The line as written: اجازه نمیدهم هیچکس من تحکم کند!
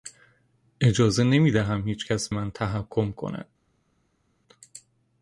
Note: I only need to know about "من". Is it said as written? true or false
true